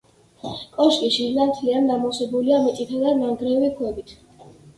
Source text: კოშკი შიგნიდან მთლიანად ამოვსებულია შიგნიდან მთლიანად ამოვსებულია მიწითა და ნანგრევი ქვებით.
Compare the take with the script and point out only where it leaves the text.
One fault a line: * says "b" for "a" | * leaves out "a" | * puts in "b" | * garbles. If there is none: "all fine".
* leaves out "შიგნიდან მთლიანად ამოვსებულია"